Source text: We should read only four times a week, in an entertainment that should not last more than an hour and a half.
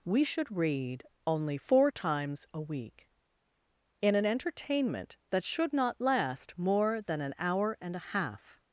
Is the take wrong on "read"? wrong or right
right